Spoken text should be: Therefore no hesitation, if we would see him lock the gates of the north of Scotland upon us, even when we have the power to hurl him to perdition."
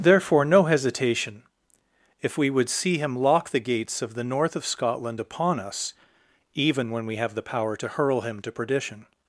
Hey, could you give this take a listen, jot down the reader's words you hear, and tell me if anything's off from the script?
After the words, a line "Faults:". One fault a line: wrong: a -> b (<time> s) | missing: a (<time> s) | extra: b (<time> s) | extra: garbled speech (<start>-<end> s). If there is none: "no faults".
Therefore no hesitation, if we would see him lock the gates of the north of Scotland upon us, even when we have the power to hurl him to perdition."
Faults:
no faults